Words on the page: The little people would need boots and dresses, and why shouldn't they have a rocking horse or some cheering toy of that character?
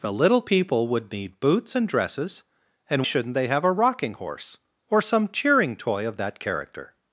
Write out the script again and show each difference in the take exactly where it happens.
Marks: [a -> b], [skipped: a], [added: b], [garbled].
The little people would need boots and dresses, and [skipped: why] shouldn't they have a rocking horse or some cheering toy of that character?